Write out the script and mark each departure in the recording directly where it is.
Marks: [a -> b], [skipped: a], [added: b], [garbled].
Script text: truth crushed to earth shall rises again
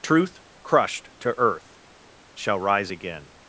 truth crushed to earth shall [rises -> rise] again